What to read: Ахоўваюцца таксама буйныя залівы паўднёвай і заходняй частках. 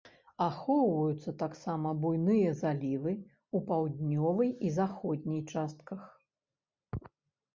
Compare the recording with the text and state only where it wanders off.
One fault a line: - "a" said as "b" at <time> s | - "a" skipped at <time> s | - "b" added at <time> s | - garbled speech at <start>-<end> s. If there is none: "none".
- "ў" added at 3.2 s